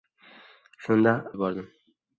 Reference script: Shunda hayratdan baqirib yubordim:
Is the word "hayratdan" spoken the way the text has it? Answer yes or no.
no